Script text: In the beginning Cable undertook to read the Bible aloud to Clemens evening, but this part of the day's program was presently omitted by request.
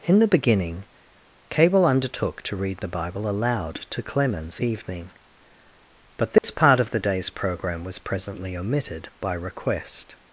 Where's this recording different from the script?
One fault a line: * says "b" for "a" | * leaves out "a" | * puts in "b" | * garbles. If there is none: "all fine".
all fine